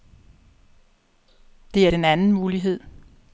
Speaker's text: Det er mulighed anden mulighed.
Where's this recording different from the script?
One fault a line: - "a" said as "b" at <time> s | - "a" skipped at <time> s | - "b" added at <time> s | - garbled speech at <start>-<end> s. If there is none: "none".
- "mulighed" said as "den" at 1.9 s